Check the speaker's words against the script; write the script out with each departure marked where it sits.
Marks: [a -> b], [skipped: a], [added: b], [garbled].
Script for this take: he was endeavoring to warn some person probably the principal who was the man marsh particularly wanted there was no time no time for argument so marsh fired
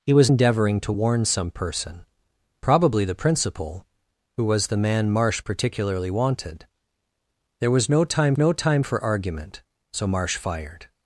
he was endeavoring to warn some person probably the principal who was the man marsh particularly wanted there was no time no time for argument so marsh fired